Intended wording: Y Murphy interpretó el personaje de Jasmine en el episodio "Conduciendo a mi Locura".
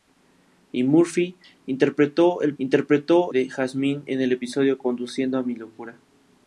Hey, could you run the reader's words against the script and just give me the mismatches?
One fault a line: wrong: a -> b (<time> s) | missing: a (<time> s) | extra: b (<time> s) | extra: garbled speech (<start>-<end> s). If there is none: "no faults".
wrong: personaje -> interpretó (2.6 s)